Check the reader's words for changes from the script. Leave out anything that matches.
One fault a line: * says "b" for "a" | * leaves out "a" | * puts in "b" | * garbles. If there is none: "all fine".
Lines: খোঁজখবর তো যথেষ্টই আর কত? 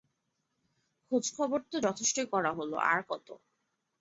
* puts in "করা হল"